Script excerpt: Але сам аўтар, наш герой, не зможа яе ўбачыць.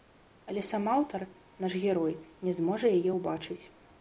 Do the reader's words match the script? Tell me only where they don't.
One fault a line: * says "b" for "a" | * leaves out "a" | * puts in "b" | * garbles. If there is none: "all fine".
all fine